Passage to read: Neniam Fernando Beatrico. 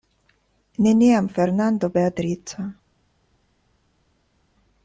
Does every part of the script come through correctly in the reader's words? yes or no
yes